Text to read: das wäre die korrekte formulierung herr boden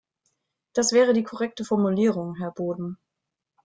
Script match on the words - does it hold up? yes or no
yes